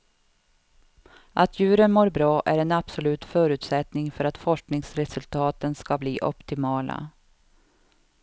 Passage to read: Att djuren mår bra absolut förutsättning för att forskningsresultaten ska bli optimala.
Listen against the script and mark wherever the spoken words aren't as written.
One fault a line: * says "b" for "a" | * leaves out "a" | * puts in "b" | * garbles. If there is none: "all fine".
* puts in "är en"